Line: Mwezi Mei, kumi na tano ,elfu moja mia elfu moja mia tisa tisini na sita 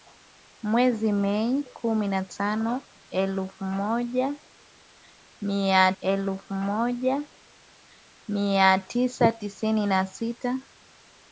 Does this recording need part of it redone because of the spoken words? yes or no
no